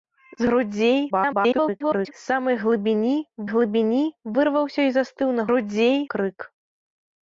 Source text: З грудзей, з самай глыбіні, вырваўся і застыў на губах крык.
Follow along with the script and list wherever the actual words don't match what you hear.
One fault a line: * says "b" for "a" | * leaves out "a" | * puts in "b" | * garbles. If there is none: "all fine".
* garbles
* puts in "глыбіні"
* says "грудзей" for "губах"